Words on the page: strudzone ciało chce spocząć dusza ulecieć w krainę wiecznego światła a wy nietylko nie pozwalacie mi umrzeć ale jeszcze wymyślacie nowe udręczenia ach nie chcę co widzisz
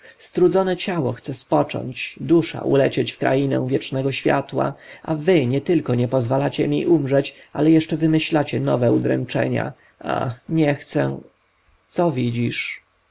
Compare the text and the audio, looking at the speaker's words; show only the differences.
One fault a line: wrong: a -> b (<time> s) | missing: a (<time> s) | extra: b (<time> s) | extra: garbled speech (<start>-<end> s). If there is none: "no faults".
no faults